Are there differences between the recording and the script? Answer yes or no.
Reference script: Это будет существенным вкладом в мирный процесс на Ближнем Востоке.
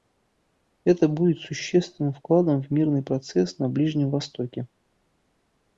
no